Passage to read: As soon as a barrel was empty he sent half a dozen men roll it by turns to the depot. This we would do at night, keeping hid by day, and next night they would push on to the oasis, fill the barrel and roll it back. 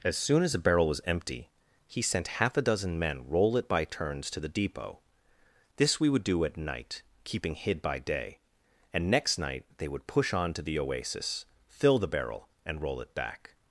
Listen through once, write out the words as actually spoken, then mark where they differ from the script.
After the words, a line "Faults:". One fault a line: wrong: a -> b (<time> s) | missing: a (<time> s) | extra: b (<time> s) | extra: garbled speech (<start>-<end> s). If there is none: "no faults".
As soon as a barrel was empty he sent half a dozen men roll it by turns to the depot. This we would do at night, keeping hid by day, and next night they would push on to the oasis, fill the barrel and roll it back.
Faults:
no faults